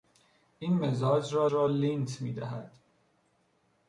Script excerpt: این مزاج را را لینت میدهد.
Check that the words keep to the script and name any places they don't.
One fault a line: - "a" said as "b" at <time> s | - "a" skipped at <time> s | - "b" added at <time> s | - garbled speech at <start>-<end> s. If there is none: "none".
none